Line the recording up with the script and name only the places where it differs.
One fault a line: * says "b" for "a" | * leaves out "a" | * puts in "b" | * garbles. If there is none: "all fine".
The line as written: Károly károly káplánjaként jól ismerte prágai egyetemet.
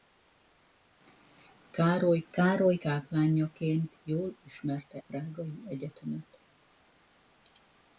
all fine